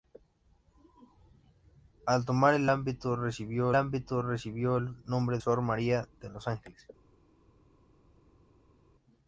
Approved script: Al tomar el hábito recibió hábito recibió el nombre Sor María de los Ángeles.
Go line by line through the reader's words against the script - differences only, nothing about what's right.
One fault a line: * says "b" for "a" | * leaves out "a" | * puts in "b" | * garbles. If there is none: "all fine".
all fine